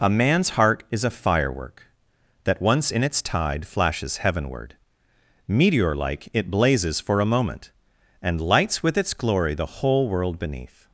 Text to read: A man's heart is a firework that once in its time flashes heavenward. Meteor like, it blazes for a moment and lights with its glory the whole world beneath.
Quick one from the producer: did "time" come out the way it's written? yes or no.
no